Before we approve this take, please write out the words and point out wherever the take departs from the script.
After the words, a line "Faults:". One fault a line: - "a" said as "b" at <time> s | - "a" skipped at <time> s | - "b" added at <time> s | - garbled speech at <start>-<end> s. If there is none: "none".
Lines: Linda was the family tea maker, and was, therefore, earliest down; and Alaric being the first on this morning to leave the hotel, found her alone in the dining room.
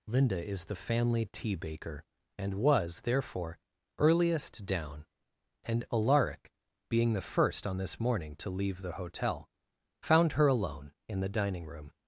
Linda is the family tea baker, and was, therefore, earliest down; and Alaric being the first on this morning to leave the hotel, found her alone in the dining room.
Faults:
- "was" said as "is" at 0.4 s
- "maker" said as "baker" at 1.6 s